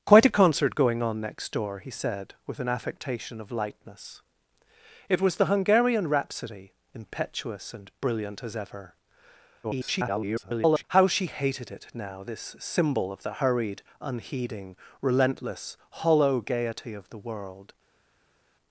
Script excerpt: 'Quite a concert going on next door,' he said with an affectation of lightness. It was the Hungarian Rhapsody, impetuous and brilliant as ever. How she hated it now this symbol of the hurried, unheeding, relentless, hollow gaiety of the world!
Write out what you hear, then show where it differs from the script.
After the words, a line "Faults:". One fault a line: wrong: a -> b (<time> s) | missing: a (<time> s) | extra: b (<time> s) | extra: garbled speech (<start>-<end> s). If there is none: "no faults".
'Quite a concert going on next door,' he said with an affectation of lightness. It was the Hungarian Rhapsody, impetuous and brilliant as ever. [garbled] How she hated it now this symbol of the hurried, unheeding, relentless, hollow gaiety of the world!
Faults:
extra: garbled speech (9.6-10.8 s)